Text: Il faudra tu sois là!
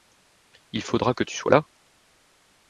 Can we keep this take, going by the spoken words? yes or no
no